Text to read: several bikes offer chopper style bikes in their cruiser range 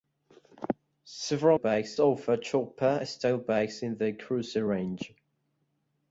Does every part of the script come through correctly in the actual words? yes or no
yes